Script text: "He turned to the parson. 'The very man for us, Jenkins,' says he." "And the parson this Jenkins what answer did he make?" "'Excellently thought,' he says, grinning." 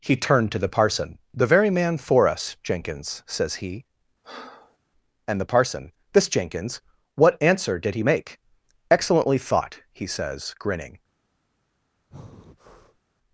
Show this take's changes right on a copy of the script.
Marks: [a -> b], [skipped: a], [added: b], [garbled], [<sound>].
"He turned to the parson. 'The very man for us, Jenkins,' says he." [breath] "And the parson this Jenkins what answer did he make?" "'Excellently thought,' he says, grinning." [breath]